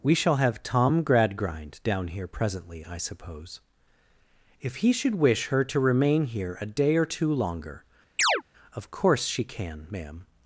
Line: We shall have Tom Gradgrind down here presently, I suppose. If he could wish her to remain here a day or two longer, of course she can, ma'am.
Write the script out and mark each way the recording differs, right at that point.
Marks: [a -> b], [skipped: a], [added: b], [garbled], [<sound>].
We shall have Tom Gradgrind down here presently, I suppose. If he [could -> should] wish her to remain here a day or two longer, [chirp] of course she can, ma'am.